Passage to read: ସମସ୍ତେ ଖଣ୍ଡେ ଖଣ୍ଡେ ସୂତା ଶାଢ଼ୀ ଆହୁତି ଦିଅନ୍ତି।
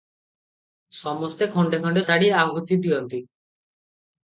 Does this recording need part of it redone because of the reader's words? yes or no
yes